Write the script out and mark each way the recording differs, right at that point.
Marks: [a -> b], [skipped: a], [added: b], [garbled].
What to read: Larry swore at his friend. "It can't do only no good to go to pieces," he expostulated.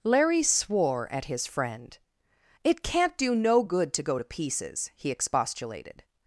Larry swore at his friend. "It can't do [skipped: only] no good to go to pieces," he expostulated.